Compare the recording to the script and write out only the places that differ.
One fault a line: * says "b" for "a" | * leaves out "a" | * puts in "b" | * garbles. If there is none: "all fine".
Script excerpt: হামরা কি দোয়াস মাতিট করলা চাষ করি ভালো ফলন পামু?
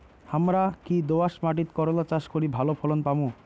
all fine